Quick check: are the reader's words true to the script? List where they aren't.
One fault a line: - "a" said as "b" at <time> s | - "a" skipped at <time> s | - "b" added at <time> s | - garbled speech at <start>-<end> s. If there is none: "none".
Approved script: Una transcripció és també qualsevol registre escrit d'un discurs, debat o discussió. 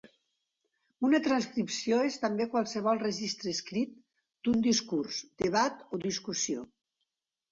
none